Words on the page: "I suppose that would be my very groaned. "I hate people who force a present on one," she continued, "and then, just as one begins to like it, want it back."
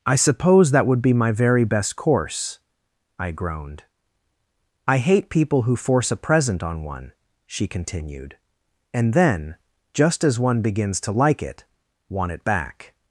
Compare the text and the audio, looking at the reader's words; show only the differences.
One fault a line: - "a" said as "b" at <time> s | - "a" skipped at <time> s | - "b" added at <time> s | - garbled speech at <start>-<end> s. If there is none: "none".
- "best course I" added at 1.6 s